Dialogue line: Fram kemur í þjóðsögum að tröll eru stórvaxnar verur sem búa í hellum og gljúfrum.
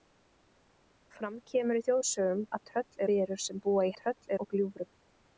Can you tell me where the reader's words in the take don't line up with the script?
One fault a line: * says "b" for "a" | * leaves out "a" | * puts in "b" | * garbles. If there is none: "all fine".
* leaves out "eru stórvaxnar"
* says "tröll" for "hellum"